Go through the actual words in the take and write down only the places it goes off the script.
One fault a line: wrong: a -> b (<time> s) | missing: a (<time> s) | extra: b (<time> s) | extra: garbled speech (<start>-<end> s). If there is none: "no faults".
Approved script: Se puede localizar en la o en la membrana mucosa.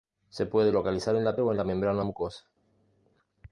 no faults